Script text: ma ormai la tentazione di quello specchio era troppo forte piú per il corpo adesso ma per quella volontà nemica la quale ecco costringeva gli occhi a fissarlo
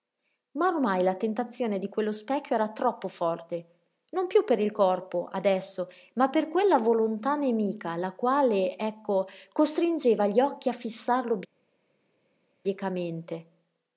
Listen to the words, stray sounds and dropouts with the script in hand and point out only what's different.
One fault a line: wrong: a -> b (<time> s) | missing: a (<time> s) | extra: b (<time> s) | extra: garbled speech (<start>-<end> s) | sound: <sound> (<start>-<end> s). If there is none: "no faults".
extra: non (4.1 s)